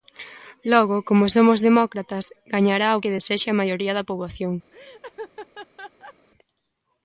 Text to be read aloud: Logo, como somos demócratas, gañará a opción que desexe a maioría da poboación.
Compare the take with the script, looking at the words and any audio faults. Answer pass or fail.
fail